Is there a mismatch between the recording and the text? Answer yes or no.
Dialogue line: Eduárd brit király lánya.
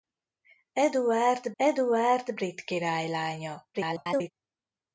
yes